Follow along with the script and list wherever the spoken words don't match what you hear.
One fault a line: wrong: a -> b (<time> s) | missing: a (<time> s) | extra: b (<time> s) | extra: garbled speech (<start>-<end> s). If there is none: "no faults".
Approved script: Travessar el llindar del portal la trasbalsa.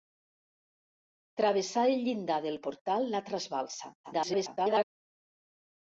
extra: garbled speech (4.0-4.8 s)